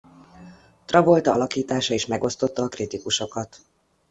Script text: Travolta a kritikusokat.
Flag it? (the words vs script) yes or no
yes